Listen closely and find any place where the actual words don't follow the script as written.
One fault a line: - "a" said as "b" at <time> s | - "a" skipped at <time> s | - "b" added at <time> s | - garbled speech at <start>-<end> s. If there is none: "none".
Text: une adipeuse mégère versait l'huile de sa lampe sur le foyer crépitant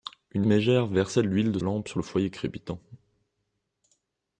- "adipeuse" skipped at 0.5 s
- "sa" skipped at 1.6 s